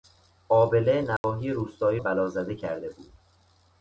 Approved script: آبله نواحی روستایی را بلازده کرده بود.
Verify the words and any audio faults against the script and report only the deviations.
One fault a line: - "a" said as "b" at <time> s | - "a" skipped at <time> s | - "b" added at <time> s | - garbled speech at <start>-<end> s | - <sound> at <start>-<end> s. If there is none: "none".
- dropout at 1.2-1.2 s
- "را" skipped at 2.0 s